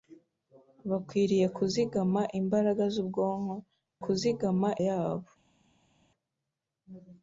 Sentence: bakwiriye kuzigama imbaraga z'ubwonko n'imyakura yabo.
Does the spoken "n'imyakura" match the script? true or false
false